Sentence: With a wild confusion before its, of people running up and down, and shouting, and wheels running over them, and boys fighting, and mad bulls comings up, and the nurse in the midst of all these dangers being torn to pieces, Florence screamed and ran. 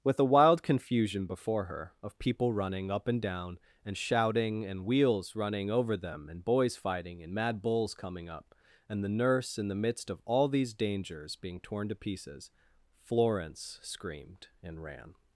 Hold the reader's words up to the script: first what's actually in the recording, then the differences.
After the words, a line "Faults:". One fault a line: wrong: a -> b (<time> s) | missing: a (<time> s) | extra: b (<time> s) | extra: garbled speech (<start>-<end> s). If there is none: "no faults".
With a wild confusion before her, of people running up and down, and shouting, and wheels running over them, and boys fighting, and mad bulls coming up, and the nurse in the midst of all these dangers being torn to pieces, Florence screamed and ran.
Faults:
wrong: its -> her (1.6 s)
wrong: comings -> coming (7.9 s)